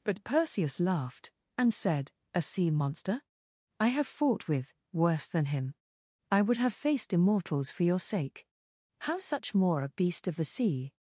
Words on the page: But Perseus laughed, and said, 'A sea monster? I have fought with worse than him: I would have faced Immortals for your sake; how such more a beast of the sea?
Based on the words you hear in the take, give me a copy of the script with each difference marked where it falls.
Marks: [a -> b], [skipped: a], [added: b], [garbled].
But Perseus laughed, and said, 'A sea monster? I have fought with worse than him: I would have faced Immortals for your sake; how such more a beast of the sea?